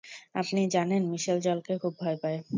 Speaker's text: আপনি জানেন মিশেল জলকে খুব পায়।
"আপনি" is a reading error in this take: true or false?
false